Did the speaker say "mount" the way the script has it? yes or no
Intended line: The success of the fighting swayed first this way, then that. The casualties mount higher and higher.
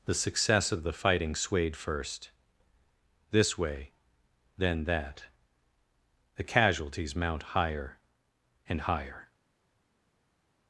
yes